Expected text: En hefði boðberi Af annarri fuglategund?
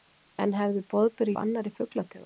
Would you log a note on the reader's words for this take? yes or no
no